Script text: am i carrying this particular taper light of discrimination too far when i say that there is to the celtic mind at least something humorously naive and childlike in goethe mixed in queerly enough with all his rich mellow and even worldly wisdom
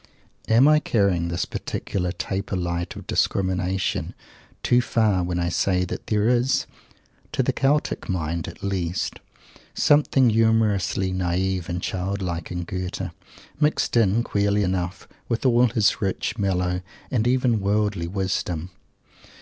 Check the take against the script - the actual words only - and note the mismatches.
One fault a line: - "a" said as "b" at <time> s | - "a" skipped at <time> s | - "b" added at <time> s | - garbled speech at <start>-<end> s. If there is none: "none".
none